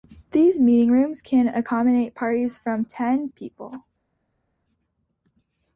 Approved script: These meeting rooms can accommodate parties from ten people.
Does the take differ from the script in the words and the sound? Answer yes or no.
no